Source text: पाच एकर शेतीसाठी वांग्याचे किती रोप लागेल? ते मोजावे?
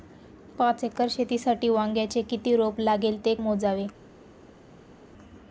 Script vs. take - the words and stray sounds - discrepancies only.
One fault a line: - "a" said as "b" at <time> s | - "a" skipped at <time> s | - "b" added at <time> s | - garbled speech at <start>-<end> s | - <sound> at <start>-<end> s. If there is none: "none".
none